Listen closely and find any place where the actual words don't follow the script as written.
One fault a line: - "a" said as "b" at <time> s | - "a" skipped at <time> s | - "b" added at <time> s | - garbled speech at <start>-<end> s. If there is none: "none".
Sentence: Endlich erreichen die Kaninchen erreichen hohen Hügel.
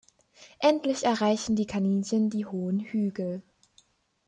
- "erreichen" said as "die" at 2.3 s